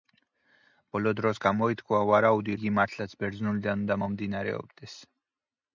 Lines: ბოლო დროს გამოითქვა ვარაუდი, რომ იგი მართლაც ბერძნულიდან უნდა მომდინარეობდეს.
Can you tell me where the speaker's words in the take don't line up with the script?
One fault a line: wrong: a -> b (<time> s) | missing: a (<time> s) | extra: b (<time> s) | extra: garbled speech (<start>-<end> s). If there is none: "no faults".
missing: რომ (2.5 s)